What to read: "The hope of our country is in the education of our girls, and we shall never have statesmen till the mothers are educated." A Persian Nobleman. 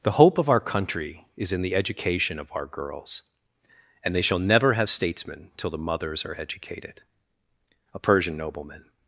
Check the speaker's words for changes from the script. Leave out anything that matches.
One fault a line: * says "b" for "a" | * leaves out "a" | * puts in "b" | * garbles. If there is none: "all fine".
* says "they" for "we"